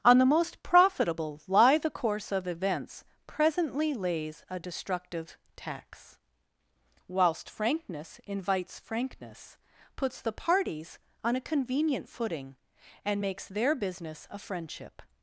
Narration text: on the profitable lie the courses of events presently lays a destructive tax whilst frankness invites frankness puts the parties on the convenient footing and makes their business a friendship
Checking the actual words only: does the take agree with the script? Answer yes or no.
no